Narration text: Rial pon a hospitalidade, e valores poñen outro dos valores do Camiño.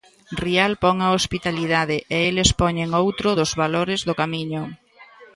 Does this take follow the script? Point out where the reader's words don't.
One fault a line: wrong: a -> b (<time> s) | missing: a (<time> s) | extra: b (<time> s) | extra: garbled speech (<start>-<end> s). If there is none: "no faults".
wrong: valores -> eles (2.3 s)